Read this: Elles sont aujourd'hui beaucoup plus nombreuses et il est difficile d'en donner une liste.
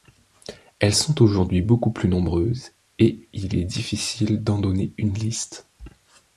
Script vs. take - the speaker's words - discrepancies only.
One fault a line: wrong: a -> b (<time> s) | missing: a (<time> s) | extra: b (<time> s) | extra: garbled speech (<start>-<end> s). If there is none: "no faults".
no faults